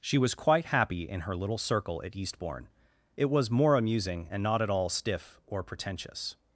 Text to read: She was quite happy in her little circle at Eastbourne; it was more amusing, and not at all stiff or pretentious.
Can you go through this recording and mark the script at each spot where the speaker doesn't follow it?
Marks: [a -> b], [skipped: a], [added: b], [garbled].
She was quite happy in her little circle at Eastbourne; it was more amusing, and not at all stiff or pretentious.